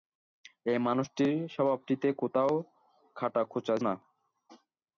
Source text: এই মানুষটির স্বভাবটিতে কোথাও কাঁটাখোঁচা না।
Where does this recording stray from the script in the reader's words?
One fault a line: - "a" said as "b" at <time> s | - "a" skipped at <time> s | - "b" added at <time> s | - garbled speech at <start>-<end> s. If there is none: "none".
none